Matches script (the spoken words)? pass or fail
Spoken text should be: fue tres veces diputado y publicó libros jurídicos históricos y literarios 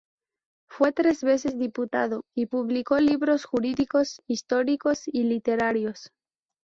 pass